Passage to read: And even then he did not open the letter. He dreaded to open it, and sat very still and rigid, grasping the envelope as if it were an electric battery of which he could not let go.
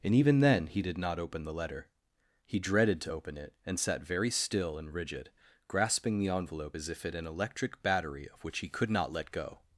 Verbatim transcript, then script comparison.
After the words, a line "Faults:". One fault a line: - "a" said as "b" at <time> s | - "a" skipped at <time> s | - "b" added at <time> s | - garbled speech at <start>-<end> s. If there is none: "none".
And even then he did not open the letter. He dreaded to open it, and sat very still and rigid, grasping the envelope as if it an electric battery of which he could not let go.
Faults:
- "were" skipped at 7.1 s